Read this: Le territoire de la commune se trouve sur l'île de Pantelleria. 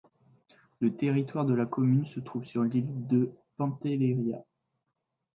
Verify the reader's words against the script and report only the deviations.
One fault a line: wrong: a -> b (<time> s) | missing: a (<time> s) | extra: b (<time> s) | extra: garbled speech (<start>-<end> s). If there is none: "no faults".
no faults